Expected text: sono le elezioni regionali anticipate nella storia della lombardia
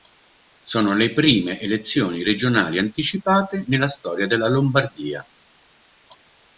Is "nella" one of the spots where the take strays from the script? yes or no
no